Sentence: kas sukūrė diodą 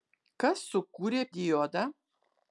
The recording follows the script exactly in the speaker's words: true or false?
true